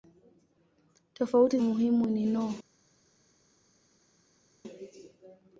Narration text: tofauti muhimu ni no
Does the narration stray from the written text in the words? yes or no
no